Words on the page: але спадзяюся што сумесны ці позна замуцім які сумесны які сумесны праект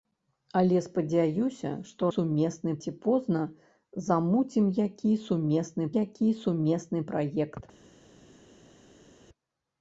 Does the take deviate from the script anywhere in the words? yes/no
no